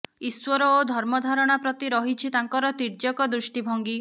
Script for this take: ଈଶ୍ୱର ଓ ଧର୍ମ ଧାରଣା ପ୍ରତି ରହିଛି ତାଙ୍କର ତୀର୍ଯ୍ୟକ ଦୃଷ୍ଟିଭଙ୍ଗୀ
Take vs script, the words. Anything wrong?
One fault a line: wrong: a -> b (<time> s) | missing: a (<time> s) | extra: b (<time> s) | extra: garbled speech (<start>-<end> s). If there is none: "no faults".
no faults